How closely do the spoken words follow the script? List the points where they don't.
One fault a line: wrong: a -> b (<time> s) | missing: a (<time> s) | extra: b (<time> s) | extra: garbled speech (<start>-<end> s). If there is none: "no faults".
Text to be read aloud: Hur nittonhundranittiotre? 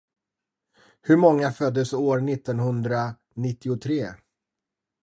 extra: många föddes år (1.2 s)